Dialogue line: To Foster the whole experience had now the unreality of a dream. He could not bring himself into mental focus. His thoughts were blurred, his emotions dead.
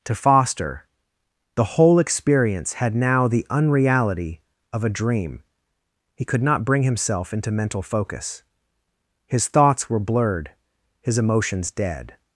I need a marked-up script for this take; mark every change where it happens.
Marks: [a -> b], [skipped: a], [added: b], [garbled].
To Foster the whole experience had now the unreality of a dream. He could not bring himself into mental focus. His thoughts were blurred, his emotions dead.